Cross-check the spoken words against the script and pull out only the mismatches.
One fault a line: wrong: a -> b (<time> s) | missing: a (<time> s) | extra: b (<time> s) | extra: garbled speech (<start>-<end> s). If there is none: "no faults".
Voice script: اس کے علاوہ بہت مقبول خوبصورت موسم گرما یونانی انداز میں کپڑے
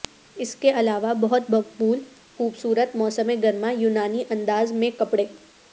no faults